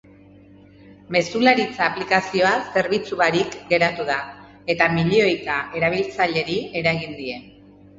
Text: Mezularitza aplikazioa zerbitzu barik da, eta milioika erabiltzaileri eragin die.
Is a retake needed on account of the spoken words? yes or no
yes